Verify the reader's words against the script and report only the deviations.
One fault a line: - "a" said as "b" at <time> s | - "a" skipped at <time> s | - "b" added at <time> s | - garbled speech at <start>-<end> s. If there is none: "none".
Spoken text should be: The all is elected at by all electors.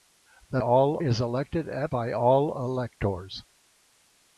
none